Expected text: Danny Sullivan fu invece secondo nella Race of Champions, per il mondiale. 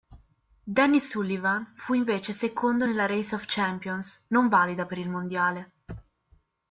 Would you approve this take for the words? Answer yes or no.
no